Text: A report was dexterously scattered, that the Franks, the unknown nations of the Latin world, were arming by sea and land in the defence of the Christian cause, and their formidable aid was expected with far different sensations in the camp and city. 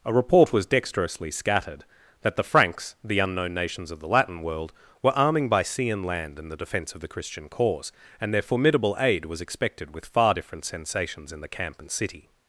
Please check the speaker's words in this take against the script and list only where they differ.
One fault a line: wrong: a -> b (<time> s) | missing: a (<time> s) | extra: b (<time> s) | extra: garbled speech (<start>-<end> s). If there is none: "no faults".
no faults